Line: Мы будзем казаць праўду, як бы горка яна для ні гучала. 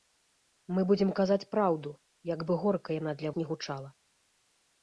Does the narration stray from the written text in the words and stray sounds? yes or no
no